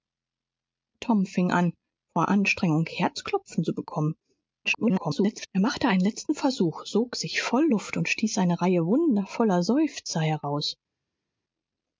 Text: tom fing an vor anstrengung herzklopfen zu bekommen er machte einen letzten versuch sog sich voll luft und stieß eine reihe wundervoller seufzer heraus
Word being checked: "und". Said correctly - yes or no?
yes